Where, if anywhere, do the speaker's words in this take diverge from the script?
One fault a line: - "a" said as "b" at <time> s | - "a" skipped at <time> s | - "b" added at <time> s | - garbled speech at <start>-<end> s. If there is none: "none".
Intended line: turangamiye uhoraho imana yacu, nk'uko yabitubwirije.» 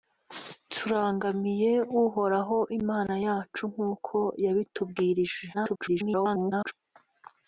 - garbled speech at 5.5-6.7 s